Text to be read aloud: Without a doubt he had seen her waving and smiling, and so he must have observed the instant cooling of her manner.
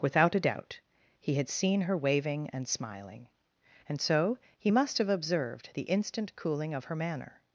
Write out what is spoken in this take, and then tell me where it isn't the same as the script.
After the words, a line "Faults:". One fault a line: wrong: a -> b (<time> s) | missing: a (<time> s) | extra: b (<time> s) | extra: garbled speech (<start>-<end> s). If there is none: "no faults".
Without a doubt he had seen her waving and smiling, and so he must have observed the instant cooling of her manner.
Faults:
no faults